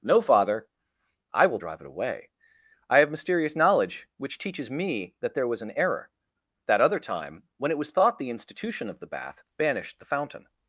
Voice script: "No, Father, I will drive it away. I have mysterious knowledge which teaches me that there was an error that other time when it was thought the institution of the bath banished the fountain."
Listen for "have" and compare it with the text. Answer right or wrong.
right